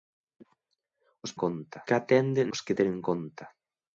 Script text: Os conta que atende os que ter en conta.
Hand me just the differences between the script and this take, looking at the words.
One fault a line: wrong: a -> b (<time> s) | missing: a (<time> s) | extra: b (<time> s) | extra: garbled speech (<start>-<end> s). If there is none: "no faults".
no faults